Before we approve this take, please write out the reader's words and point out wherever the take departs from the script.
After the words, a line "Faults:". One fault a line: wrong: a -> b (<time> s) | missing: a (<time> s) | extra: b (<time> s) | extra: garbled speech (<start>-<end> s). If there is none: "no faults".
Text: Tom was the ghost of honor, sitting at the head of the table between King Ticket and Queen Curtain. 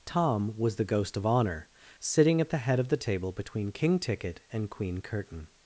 Tom was the ghost of honor, sitting at the head of the table between King Ticket and Queen Curtain.
Faults:
no faults